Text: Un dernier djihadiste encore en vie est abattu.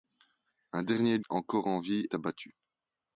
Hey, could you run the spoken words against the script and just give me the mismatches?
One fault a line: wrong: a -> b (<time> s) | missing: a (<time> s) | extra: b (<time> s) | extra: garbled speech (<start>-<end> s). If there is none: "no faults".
missing: djihadiste (1.2 s)
missing: est (2.0 s)